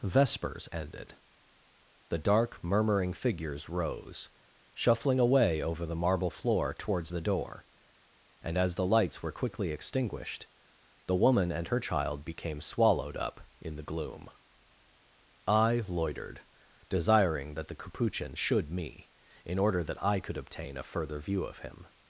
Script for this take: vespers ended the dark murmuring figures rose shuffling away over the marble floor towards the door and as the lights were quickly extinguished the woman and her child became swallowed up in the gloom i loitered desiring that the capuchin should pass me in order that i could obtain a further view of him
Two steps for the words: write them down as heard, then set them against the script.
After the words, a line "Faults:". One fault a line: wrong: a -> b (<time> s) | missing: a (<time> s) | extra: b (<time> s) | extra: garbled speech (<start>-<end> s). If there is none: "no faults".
vespers ended the dark murmuring figures rose shuffling away over the marble floor towards the door and as the lights were quickly extinguished the woman and her child became swallowed up in the gloom i loitered desiring that the capuchin should me in order that i could obtain a further view of him
Faults:
missing: pass (18.7 s)